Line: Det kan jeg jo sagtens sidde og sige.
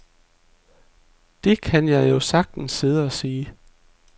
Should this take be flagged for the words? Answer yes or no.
no